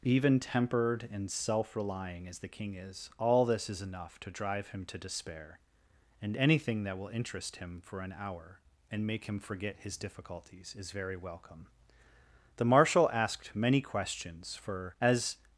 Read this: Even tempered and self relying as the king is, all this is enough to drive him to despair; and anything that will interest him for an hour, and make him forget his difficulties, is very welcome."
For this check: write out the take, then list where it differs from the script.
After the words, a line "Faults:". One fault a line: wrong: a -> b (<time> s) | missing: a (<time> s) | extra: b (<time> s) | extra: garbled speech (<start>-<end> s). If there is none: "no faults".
Even tempered and self relying as the king is, all this is enough to drive him to despair; and anything that will interest him for an hour, and make him forget his difficulties, is very welcome." The marshal asked many questions for, as
Faults:
extra: The marshal asked many questions for as (12.5 s)